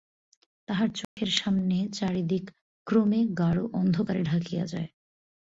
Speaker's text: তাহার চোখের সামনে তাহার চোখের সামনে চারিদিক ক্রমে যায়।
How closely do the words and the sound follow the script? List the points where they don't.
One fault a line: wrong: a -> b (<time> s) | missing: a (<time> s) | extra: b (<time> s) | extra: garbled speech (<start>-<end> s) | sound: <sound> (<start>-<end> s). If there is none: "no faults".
sound: dropout (1.0-1.2 s)
wrong: তাহার চোখের সামনে চারিদিক ক্রমে -> চারিদিক ক্রমে গাঢ় অন্ধকারে ঢাকিয়া (1.9 s)